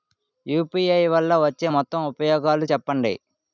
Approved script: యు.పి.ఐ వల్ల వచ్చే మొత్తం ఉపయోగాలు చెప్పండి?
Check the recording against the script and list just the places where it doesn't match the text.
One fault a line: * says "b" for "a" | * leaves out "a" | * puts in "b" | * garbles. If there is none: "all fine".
all fine